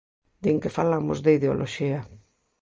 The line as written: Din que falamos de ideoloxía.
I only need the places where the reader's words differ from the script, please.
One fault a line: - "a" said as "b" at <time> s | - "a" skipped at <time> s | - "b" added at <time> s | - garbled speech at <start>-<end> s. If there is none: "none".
none